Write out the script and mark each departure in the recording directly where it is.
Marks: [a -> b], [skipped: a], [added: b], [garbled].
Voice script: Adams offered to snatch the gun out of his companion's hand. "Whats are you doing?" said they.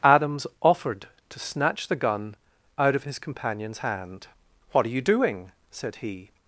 Adams offered to snatch the gun out of his companion's hand. ["Whats -> What] are you doing?" said [they. -> he]